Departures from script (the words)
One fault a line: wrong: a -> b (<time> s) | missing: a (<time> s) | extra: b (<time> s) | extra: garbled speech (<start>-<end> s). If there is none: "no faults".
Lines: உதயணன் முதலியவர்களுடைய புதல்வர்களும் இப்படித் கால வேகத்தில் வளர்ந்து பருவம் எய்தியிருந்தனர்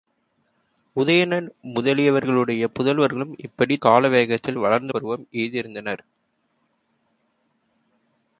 no faults